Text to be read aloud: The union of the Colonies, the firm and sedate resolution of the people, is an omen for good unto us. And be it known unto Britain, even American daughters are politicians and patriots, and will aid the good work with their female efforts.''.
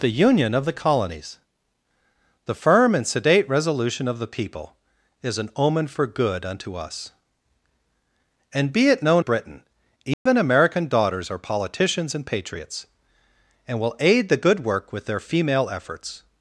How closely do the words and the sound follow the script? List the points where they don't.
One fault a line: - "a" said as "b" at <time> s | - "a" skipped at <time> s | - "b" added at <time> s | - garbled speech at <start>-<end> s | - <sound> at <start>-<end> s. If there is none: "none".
- "unto" skipped at 9.2 s
- dropout at 10.1-10.3 s